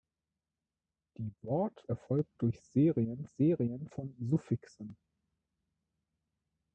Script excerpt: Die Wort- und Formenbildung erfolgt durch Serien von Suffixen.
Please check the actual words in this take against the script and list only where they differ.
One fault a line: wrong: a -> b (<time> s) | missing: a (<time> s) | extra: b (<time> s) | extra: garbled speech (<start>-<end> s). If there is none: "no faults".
missing: und Formenbildung (1.9 s)
extra: Serien (3.3 s)